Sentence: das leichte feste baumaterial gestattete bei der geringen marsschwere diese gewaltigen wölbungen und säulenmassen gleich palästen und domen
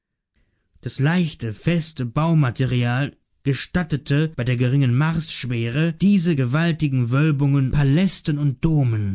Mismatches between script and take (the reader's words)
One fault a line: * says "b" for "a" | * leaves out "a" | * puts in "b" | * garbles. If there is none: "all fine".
* leaves out "und säulenmassen gleich"